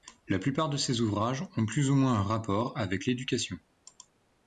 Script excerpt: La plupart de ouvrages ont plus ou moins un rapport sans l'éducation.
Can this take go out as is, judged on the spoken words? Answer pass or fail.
fail